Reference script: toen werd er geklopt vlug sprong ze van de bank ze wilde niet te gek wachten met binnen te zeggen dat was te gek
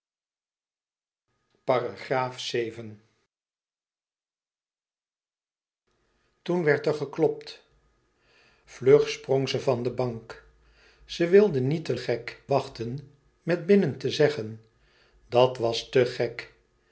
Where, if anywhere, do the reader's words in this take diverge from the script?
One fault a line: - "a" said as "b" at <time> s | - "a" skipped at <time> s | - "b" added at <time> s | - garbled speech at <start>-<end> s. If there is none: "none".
none